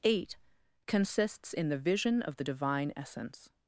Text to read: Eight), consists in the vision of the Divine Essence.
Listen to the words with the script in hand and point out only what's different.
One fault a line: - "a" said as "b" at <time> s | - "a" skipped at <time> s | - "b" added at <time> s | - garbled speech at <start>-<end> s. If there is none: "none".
none